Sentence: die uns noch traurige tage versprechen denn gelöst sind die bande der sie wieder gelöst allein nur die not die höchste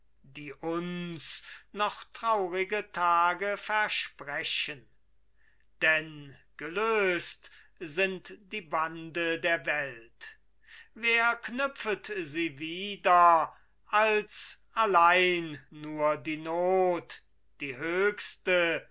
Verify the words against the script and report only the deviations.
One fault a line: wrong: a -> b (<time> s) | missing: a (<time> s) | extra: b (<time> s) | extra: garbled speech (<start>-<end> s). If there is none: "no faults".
extra: welt wer knüpfet (9.6 s)
wrong: gelöst -> als (13.9 s)